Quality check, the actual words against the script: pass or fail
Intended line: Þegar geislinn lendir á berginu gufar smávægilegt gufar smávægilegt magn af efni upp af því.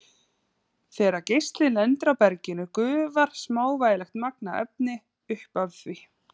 fail